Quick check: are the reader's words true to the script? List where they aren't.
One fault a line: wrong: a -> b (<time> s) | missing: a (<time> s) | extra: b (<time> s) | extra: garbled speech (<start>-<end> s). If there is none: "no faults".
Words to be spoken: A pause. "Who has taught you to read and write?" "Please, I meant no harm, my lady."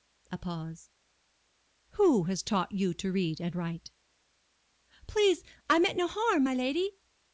no faults